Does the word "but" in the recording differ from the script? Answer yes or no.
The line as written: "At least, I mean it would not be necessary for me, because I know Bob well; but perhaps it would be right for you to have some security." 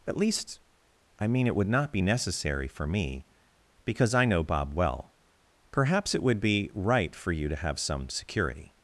yes